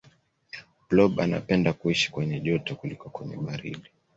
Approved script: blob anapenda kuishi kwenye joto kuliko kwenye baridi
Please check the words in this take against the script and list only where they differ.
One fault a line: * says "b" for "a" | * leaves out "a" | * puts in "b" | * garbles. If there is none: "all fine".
all fine